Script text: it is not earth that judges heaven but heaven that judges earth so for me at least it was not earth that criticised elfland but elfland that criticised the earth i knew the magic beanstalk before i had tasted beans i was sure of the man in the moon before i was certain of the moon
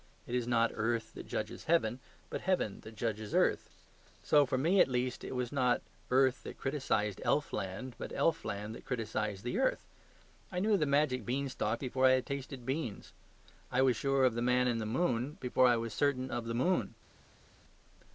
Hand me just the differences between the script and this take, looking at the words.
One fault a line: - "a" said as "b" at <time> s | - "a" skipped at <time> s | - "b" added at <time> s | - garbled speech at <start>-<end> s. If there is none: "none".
none